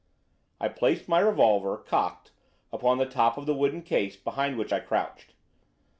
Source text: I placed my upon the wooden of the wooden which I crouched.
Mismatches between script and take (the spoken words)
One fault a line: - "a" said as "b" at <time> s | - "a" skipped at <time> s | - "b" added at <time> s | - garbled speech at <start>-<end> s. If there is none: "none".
- "revolver cocked" added at 1.2 s
- "wooden" said as "top" at 3.0 s
- "case behind" added at 3.8 s